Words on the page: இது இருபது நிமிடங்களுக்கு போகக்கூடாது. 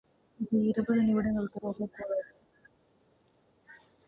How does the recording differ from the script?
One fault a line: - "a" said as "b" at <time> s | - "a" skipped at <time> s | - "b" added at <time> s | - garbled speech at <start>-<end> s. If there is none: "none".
none